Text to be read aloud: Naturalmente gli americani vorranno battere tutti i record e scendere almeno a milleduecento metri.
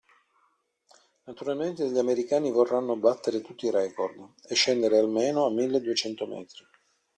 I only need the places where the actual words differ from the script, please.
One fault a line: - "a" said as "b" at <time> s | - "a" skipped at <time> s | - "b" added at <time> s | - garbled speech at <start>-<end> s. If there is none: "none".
none